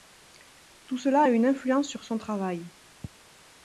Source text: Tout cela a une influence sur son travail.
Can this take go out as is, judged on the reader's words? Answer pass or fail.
pass